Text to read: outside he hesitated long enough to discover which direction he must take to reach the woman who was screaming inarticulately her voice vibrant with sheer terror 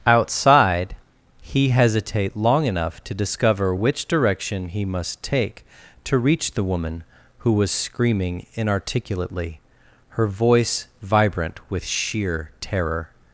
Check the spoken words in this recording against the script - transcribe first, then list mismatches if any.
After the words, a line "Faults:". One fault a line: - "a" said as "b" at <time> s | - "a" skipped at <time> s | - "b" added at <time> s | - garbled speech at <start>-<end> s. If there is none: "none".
outside he hesitate long enough to discover which direction he must take to reach the woman who was screaming inarticulately her voice vibrant with sheer terror
Faults:
- "hesitated" said as "hesitate" at 1.7 s